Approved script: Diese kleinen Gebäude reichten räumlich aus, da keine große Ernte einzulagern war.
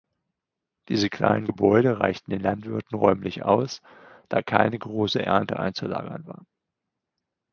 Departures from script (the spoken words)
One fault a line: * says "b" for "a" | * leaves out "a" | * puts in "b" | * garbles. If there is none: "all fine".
* puts in "den Landwirten"